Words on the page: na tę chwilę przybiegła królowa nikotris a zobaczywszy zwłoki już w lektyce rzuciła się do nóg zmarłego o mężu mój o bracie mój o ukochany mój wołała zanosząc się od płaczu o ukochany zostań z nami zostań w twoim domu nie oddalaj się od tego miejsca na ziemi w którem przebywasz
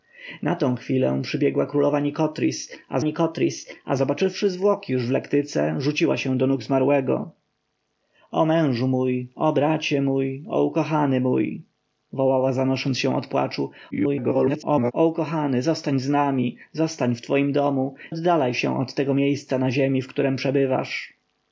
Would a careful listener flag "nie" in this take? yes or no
yes